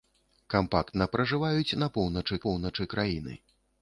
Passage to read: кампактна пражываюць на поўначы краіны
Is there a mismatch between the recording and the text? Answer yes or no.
yes